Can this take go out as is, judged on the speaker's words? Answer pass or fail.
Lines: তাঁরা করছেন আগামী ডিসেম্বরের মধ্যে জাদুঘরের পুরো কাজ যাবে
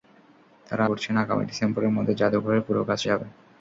pass